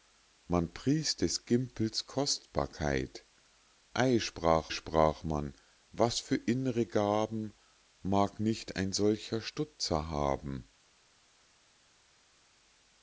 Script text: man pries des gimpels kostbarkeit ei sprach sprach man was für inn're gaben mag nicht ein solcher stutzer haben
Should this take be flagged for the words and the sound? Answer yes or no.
no